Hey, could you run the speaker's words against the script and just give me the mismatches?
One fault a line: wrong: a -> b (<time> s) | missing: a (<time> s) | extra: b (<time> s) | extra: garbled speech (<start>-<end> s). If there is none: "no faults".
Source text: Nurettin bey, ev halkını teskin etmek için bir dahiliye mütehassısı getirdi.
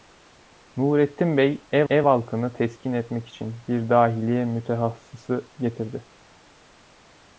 extra: ev (1.9 s)